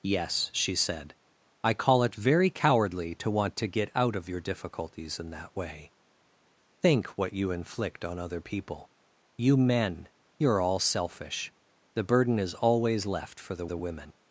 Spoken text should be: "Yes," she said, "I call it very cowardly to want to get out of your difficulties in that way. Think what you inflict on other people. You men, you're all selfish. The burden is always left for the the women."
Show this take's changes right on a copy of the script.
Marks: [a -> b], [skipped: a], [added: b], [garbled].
"Yes," she said, "I call it very cowardly to want to get out of your difficulties in that way. Think what you inflict on other people. You men, you're all selfish. The burden is always left for the the women."